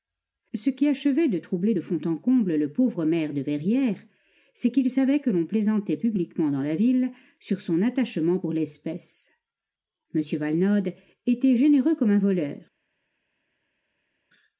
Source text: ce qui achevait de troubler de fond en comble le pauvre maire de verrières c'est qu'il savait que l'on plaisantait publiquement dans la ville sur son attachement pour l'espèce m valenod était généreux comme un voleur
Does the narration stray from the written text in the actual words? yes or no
no